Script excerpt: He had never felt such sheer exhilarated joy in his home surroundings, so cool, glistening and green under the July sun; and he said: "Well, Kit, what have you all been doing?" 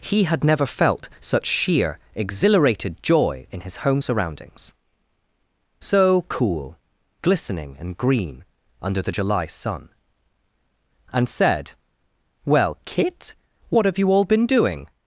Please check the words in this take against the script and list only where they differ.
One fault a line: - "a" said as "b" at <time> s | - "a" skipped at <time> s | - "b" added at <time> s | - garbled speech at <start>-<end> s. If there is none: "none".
- "he" skipped at 11.3 s